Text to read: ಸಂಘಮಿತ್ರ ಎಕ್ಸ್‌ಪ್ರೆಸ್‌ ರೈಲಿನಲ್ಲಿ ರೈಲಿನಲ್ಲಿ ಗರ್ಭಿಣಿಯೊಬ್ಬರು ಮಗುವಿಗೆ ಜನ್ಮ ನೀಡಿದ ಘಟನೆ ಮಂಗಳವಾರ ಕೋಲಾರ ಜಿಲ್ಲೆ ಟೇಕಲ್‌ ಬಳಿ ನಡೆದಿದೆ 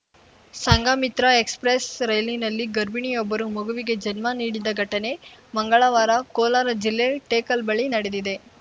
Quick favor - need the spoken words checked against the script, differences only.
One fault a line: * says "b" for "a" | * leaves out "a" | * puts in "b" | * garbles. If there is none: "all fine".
* leaves out "ರೈಲಿನಲ್ಲಿ"